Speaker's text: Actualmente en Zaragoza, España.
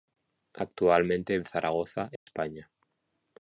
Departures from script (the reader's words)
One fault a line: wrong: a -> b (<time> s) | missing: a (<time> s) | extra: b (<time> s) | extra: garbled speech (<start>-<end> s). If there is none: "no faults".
no faults